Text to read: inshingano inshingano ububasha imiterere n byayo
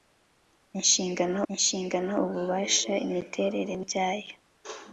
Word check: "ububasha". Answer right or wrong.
right